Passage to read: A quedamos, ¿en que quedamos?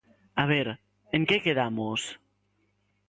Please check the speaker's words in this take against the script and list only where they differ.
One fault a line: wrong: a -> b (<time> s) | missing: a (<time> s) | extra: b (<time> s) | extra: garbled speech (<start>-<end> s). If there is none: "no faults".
wrong: quedamos -> ver (0.5 s)